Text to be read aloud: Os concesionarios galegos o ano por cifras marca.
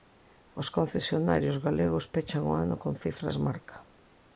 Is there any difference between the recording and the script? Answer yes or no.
yes